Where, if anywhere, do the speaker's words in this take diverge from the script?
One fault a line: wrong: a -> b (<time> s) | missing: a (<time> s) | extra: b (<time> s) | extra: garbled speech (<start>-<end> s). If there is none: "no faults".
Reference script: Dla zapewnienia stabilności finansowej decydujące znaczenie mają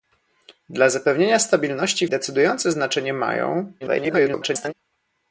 missing: finansowej (2.1 s)
extra: garbled speech (3.8-4.7 s)